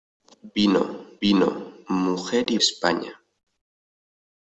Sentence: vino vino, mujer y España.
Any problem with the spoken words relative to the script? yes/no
no